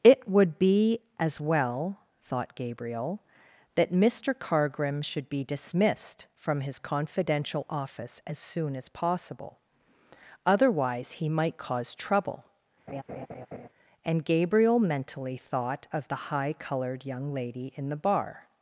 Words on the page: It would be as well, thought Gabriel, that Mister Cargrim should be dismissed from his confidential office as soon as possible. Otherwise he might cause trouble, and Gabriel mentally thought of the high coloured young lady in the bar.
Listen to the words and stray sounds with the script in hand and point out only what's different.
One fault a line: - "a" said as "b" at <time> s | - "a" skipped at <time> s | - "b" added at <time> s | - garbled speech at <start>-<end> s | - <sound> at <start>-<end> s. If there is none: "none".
- laugh at 12.9-13.7 s